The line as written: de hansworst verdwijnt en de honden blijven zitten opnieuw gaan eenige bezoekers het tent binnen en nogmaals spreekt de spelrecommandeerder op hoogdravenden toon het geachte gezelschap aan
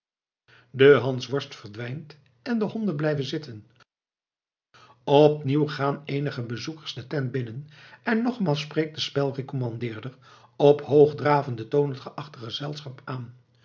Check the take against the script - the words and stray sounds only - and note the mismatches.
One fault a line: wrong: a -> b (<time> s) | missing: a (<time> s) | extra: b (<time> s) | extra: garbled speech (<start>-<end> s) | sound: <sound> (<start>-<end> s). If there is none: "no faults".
wrong: het -> de (6.9 s)